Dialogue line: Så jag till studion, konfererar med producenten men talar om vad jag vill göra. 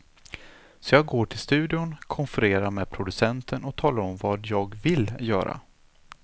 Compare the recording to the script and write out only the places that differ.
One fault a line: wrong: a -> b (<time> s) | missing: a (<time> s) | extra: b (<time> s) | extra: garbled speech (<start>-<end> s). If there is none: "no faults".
extra: går (1.1 s)
wrong: men -> och (3.6 s)